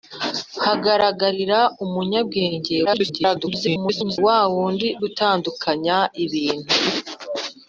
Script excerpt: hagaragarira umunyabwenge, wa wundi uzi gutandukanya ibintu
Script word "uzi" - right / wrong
wrong